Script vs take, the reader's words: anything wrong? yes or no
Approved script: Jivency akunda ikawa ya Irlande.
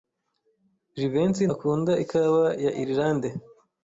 no